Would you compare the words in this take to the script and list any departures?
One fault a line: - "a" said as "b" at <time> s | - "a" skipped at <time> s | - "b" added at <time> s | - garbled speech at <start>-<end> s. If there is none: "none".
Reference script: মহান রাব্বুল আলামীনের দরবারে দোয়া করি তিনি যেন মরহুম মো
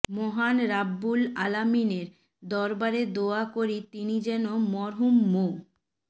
none